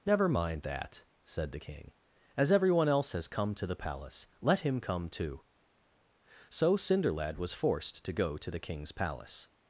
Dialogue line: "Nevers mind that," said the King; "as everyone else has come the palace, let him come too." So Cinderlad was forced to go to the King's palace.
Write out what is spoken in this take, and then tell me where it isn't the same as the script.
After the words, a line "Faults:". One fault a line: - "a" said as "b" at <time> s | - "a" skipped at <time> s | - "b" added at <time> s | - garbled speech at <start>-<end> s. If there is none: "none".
"Never mind that," said the King; "as everyone else has come to the palace, let him come too." So Cinderlad was forced to go to the King's palace.
Faults:
- "Nevers" said as "Never" at 0.1 s
- "to" added at 3.5 s